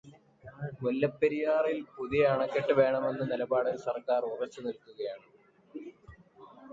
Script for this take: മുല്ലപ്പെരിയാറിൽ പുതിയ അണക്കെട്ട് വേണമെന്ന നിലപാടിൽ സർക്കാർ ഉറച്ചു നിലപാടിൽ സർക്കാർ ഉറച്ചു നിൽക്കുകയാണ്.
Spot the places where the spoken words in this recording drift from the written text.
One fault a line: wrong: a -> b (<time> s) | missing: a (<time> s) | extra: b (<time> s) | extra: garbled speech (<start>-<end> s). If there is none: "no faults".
missing: നിലപാടിൽ സർക്കാർ ഉറച്ചു (4.6 s)